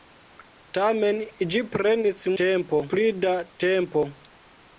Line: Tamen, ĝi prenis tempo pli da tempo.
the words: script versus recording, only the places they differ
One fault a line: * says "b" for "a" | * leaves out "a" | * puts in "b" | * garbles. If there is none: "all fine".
all fine